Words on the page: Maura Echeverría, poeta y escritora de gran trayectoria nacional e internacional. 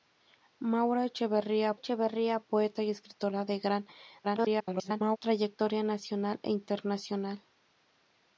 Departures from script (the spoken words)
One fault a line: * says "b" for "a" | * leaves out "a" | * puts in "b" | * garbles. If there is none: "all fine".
* puts in "Echeverría"
* garbles